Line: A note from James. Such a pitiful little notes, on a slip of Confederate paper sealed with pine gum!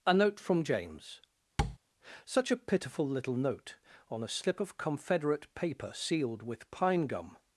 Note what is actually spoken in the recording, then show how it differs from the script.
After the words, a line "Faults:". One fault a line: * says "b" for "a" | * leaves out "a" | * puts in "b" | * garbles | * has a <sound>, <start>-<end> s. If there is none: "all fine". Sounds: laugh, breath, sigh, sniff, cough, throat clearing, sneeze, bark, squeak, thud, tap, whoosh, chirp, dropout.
A note from James. Such a pitiful little note, on a slip of Confederate paper sealed with pine gum!
Faults:
* has a tap, 1.6-1.8 s
* says "note" for "notes"